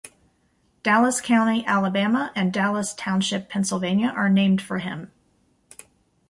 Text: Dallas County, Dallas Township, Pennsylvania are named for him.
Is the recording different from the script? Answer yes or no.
yes